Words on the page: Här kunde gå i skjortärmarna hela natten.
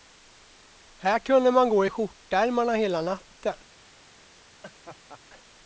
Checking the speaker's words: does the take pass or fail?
fail